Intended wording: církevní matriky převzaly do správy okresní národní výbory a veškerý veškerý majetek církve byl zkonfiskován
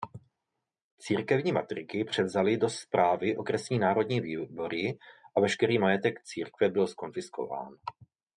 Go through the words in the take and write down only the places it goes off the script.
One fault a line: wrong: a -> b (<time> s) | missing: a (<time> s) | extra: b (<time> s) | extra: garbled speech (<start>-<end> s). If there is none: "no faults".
missing: veškerý (5.8 s)